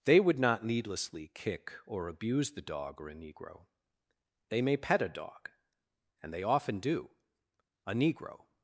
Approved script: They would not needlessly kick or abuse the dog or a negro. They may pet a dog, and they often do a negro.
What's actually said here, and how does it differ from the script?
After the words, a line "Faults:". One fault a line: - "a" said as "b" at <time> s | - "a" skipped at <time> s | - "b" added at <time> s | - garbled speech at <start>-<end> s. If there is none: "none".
They would not needlessly kick or abuse the dog or a negro. They may pet a dog, and they often do a negro.
Faults:
none